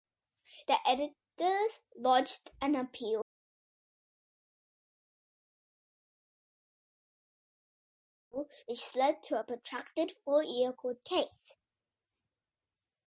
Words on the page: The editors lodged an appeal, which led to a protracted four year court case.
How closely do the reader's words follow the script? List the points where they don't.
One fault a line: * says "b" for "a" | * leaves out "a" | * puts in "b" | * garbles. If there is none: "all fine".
all fine